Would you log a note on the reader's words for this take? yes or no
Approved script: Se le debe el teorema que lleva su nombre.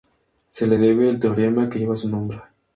no